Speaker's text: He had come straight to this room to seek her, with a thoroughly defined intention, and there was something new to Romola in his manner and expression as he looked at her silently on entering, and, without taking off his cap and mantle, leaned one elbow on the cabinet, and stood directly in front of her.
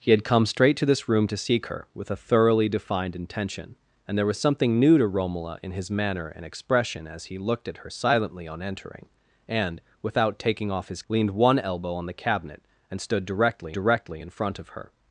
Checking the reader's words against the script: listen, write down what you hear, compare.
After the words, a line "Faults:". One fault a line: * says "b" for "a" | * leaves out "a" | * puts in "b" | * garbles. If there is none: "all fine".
He had come straight to this room to seek her, with a thoroughly defined intention, and there was something new to Romola in his manner and expression as he looked at her silently on entering, and, without taking off his leaned one elbow on the cabinet, and stood directly directly in front of her.
Faults:
* leaves out "cap and mantle"
* puts in "directly"